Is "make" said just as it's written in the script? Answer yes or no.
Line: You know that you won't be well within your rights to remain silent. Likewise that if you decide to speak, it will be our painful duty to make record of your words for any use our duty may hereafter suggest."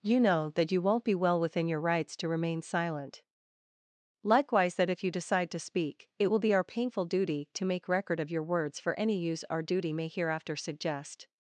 yes